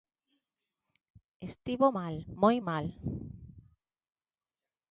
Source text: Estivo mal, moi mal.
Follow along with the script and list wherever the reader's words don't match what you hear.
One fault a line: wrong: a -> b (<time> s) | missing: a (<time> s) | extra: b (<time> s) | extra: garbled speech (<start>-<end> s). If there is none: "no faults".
no faults